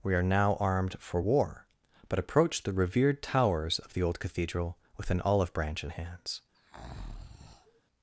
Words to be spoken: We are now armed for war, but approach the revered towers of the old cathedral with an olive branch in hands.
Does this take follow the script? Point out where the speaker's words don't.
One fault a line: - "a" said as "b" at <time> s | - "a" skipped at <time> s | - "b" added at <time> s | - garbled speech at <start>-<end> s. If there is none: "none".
none